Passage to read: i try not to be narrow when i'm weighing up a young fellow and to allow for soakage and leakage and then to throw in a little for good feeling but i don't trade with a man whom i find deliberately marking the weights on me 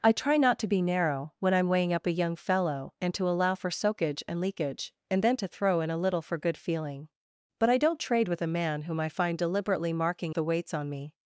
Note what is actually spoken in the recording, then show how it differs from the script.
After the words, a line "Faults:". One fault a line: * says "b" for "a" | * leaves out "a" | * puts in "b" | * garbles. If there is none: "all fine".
i try not to be narrow when i'm weighing up a young fellow and to allow for soakage and leakage and then to throw in a little for good feeling but i don't trade with a man whom i find deliberately marking the weights on me
Faults:
all fine